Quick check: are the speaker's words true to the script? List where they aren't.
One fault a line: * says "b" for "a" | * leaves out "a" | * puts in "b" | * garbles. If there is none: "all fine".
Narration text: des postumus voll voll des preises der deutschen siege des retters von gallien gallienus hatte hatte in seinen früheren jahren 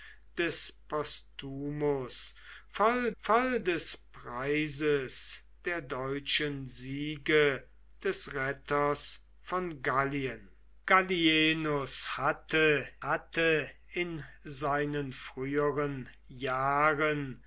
all fine